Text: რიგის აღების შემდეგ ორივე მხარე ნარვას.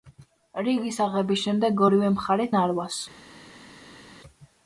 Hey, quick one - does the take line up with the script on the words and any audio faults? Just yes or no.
yes